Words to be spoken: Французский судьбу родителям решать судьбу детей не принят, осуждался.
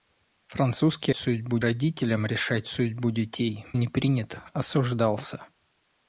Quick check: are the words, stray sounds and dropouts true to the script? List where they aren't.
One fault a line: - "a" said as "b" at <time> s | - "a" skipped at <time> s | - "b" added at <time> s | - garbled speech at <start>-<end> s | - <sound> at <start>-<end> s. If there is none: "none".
none